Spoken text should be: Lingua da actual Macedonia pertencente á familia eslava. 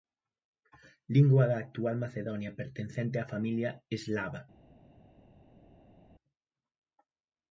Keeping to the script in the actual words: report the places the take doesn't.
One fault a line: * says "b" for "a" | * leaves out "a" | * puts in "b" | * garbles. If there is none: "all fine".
all fine